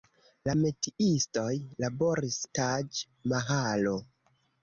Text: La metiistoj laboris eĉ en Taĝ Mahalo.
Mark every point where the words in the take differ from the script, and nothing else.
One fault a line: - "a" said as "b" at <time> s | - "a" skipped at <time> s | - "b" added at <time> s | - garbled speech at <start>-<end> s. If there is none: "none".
- "eĉ en" skipped at 2.4 s